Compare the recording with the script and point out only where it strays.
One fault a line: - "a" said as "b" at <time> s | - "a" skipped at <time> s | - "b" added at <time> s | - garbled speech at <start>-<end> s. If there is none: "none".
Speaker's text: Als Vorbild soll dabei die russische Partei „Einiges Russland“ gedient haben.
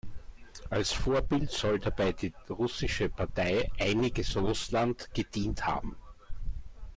none